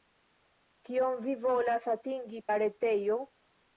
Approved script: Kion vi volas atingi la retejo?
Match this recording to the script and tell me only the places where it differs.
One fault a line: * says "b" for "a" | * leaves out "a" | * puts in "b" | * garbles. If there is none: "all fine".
all fine